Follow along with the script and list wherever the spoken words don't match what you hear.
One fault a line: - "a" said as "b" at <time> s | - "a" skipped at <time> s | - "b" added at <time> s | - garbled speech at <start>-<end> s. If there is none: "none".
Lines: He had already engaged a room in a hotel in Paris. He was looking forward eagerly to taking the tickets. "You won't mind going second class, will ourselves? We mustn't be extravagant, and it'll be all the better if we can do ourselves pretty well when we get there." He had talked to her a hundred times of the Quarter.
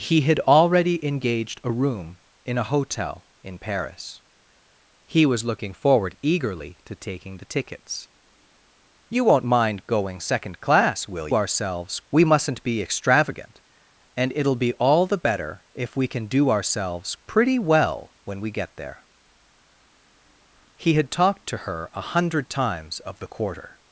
none